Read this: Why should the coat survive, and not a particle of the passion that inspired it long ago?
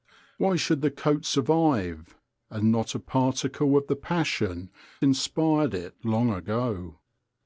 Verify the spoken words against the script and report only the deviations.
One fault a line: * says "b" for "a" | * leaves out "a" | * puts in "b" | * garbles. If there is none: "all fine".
* leaves out "that"